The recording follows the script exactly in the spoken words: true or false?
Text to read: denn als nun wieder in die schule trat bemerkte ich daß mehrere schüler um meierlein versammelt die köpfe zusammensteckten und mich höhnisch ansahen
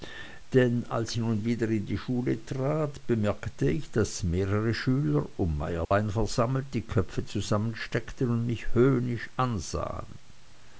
true